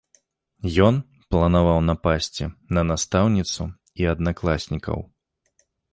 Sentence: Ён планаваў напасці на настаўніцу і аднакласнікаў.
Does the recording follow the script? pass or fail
pass